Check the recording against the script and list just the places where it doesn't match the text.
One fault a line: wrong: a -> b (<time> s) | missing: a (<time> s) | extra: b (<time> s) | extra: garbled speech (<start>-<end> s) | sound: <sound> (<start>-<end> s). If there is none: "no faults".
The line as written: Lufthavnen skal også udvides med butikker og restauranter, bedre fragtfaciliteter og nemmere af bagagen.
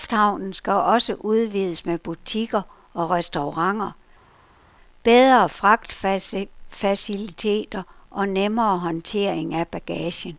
extra: håndtering (8.8 s)